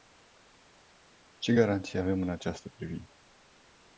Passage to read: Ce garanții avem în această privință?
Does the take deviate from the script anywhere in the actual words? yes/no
no